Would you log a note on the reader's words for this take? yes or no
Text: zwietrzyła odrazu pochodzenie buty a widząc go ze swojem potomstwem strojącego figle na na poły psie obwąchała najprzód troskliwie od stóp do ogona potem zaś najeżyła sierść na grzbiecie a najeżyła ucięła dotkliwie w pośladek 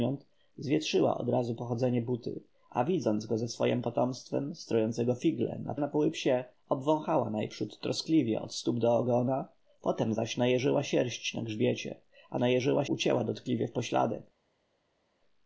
no